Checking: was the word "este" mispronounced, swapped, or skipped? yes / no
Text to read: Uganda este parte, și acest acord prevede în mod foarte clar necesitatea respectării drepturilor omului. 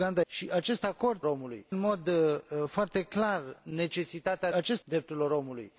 yes